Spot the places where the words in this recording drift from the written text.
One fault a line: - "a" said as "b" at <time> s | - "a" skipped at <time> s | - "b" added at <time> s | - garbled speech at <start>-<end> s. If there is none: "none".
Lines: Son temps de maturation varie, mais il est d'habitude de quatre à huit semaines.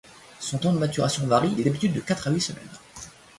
- "mais" skipped at 1.6 s